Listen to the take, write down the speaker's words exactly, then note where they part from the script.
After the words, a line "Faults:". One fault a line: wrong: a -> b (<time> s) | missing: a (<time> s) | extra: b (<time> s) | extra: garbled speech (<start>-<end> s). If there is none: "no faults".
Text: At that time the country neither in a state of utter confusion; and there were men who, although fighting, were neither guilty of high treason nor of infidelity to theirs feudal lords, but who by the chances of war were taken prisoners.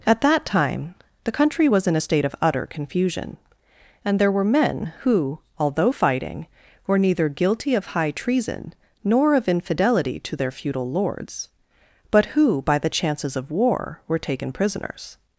At that time the country was in a state of utter confusion; and there were men who, although fighting, were neither guilty of high treason nor of infidelity to their feudal lords, but who by the chances of war were taken prisoners.
Faults:
wrong: neither -> was (1.7 s)
wrong: theirs -> their (10.3 s)